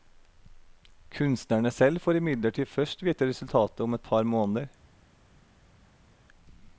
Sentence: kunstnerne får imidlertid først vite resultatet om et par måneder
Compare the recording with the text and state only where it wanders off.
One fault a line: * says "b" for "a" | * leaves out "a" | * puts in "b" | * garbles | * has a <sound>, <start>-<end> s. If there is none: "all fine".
* puts in "selv"